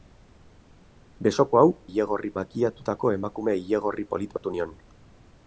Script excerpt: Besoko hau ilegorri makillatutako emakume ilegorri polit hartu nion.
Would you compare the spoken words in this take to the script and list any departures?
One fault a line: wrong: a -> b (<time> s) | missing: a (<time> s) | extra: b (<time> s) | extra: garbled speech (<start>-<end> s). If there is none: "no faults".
no faults